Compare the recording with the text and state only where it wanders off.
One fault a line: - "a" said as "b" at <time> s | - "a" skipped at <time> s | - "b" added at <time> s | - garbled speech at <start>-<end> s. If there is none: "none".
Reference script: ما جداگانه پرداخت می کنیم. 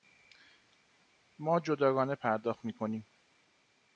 none